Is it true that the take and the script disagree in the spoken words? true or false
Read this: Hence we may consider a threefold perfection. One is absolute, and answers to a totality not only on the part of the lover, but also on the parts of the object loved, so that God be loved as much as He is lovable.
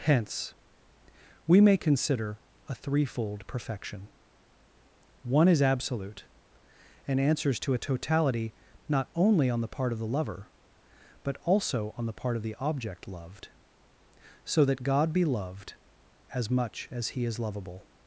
true